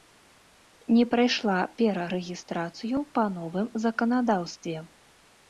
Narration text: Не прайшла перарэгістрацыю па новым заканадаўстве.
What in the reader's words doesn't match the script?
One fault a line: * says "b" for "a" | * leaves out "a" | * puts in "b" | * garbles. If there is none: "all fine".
all fine